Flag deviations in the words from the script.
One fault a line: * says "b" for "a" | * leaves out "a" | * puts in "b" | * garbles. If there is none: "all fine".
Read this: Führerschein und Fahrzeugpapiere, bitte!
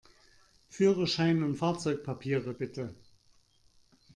all fine